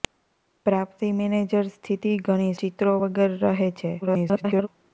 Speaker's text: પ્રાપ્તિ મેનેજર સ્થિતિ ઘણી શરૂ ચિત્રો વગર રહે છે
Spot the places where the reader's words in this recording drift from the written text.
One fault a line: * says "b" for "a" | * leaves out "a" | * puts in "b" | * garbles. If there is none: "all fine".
* leaves out "શરૂ"
* garbles